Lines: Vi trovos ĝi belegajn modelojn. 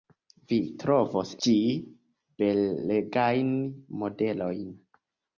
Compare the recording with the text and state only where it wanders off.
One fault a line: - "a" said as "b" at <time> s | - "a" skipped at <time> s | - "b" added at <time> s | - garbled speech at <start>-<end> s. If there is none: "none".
none